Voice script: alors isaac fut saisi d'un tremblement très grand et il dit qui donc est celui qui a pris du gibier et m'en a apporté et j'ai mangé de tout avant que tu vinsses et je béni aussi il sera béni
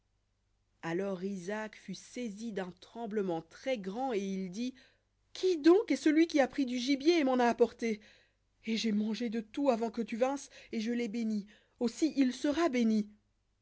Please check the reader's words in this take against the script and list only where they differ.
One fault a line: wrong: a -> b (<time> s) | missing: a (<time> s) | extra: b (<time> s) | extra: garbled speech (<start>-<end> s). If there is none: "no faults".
extra: l'ai (10.9 s)